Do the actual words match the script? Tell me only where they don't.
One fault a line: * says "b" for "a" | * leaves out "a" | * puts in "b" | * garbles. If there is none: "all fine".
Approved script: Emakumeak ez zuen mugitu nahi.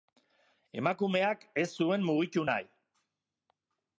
all fine